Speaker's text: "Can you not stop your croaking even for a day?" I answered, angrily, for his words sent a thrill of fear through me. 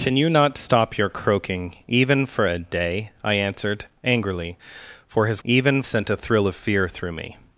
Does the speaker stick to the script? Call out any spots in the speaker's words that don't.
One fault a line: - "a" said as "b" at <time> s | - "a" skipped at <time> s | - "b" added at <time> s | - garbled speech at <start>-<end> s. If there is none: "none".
- "words" said as "even" at 5.4 s